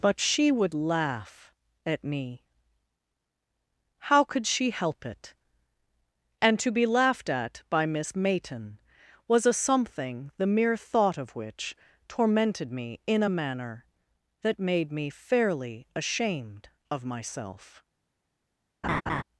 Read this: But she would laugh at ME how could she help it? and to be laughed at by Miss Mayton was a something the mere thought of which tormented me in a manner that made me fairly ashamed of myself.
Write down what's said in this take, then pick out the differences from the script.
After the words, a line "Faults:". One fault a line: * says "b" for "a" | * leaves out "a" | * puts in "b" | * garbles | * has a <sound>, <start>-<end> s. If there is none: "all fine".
But she would laugh at ME how could she help it? and to be laughed at by Miss Mayton was a something the mere thought of which tormented me in a manner that made me fairly ashamed of myself.
Faults:
* has a laugh, 18.8-19.2 s